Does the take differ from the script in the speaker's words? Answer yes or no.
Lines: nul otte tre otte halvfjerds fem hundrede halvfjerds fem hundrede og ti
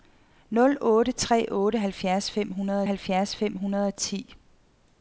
no